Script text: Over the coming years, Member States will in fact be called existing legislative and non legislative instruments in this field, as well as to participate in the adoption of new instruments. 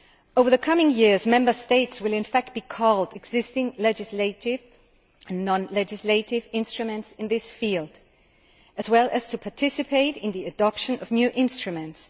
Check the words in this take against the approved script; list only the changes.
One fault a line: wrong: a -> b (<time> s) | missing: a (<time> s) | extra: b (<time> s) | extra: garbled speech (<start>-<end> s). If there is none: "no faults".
no faults